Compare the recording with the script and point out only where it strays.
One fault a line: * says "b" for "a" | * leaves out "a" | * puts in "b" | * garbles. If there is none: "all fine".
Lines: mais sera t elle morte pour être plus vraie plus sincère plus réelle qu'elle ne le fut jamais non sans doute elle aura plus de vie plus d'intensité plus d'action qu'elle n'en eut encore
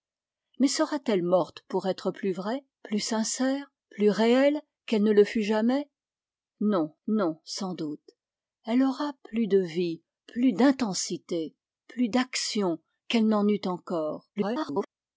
* puts in "non"
* garbles